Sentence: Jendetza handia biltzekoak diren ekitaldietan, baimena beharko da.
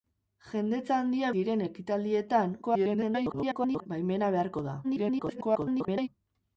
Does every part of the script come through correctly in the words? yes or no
no